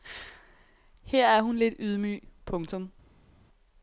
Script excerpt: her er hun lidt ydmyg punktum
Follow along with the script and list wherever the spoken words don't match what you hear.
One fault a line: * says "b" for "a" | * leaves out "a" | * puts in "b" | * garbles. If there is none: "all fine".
all fine